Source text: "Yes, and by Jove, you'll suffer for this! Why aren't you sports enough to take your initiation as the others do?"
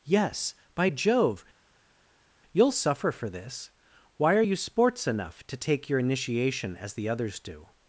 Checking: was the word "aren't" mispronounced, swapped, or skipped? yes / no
yes